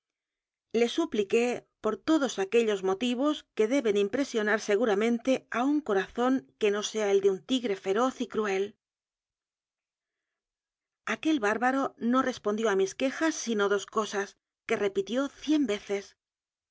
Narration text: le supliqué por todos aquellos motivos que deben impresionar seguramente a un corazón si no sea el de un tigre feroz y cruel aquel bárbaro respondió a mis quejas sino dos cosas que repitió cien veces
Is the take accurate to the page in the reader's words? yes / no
no